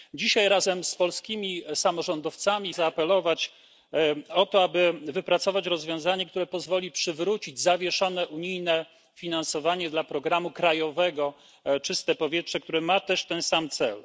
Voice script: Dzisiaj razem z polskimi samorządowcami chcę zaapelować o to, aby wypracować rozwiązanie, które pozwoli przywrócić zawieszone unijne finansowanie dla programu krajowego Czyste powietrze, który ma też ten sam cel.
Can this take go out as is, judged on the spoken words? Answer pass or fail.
fail